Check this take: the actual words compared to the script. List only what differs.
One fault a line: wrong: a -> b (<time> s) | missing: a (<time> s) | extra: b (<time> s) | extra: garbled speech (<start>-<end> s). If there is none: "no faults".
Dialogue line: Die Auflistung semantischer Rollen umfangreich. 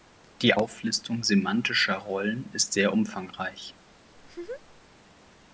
extra: ist sehr (2.5 s)